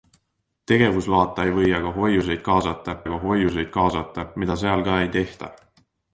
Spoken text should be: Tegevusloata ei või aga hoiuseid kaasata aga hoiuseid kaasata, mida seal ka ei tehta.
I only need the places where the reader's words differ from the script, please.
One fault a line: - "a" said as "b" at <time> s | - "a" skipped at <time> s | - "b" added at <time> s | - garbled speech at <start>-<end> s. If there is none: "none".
none